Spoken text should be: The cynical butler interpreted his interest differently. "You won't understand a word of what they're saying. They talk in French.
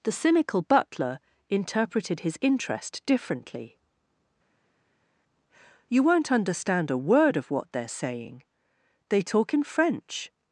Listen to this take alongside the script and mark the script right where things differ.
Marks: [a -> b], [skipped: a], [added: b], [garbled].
The cynical butler interpreted his interest differently. "You won't understand a word of what they're saying. They talk in French.